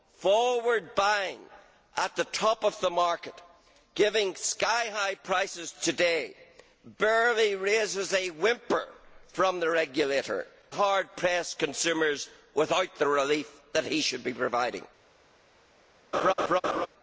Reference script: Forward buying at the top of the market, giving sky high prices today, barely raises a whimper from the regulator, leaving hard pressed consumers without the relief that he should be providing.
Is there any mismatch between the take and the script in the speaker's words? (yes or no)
yes